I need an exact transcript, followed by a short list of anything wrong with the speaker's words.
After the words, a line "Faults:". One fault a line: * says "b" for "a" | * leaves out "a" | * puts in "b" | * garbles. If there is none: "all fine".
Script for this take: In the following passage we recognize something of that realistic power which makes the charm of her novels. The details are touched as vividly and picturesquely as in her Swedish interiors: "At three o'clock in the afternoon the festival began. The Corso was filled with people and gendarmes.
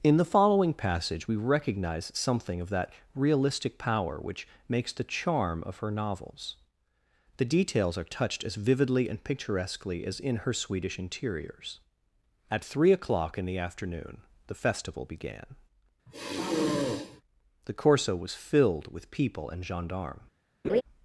In the following passage we recognize something of that realistic power which makes the charm of her novels. The details are touched as vividly and picturesquely as in her Swedish interiors: "At three o'clock in the afternoon the festival began. The Corso was filled with people and gendarmes.
Faults:
all fine